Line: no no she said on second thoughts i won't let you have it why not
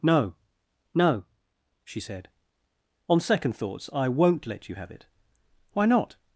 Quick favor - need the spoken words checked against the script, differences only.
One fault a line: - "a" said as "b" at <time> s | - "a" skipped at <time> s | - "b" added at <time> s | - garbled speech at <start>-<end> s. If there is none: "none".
none